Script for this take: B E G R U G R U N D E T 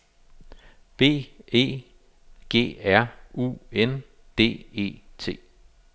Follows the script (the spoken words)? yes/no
no